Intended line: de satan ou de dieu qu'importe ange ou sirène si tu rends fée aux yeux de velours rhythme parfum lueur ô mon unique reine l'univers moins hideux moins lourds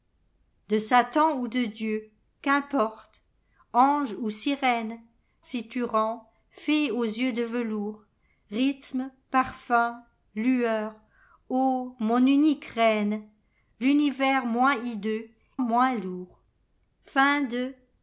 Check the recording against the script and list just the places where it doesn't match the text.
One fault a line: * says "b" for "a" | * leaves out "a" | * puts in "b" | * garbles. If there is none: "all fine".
all fine